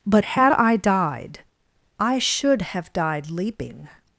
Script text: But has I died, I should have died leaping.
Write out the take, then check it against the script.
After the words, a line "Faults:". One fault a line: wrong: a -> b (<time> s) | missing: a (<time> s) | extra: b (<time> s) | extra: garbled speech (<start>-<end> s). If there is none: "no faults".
But had I died, I should have died leaping.
Faults:
wrong: has -> had (0.2 s)